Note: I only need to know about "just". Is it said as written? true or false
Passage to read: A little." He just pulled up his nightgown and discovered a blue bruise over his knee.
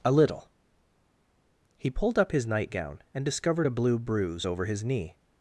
false